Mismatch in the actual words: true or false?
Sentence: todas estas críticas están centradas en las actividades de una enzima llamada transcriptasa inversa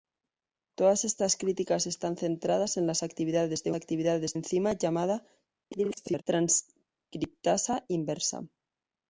true